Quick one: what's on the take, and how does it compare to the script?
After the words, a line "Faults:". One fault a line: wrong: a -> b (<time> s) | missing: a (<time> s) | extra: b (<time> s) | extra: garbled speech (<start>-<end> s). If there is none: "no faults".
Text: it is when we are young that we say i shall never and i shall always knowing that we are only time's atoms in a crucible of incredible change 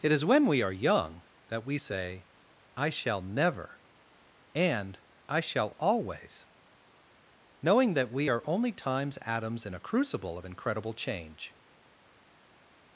it is when we are young that we say i shall never and i shall always knowing that we are only time's atoms in a crucible of incredible change
Faults:
no faults